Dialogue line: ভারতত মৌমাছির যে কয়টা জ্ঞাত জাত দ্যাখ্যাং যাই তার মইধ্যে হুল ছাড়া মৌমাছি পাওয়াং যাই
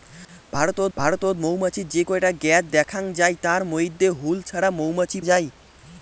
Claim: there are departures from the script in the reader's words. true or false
true